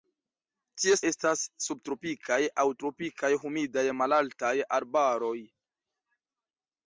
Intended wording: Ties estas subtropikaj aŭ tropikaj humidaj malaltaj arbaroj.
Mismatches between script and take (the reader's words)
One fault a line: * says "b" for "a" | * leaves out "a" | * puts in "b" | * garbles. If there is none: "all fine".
all fine